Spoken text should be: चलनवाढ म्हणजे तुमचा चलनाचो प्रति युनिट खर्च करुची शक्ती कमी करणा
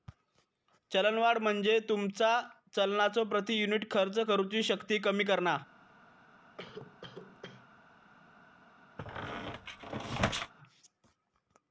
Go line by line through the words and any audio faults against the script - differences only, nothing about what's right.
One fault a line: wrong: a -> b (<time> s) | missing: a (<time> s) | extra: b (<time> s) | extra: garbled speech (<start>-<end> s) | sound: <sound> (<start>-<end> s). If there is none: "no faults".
sound: cough (6.6-7.7 s)
sound: squeak (9.0-10.5 s)